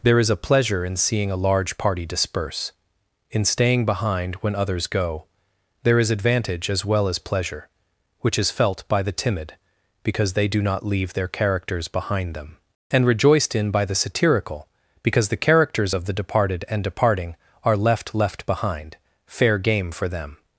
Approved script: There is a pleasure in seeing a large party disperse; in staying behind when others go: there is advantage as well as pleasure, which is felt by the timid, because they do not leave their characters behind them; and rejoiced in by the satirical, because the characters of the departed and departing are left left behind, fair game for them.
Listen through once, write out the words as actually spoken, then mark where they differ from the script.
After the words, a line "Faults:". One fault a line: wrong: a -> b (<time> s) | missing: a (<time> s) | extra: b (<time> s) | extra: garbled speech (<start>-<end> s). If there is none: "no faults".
There is a pleasure in seeing a large party disperse; in staying behind when others go: there is advantage as well as pleasure, which is felt by the timid, because they do not leave their characters behind them; and rejoiced in by the satirical, because the characters of the departed and departing are left left behind, fair game for them.
Faults:
no faults